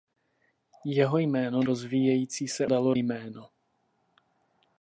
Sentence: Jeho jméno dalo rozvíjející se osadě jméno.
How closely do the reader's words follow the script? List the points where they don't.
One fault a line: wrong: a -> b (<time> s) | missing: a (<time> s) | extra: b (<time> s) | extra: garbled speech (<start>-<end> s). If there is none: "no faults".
missing: dalo (1.6 s)
wrong: osadě -> dalo (2.6 s)